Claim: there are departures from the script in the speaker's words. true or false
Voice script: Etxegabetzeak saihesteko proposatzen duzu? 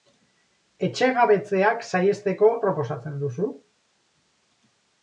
false